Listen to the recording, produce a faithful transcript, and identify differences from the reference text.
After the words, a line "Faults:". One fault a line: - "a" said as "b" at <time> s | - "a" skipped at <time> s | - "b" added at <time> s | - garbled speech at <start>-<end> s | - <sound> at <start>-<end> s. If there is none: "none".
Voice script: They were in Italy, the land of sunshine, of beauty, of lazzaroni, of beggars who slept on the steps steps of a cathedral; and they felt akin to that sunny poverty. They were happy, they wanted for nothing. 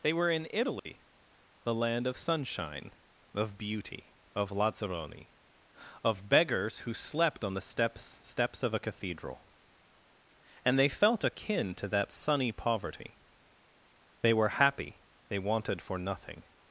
They were in Italy, the land of sunshine, of beauty, of lazzaroni, of beggars who slept on the steps steps of a cathedral; and they felt akin to that sunny poverty. They were happy, they wanted for nothing.
Faults:
- dropout at 0.8-0.9 s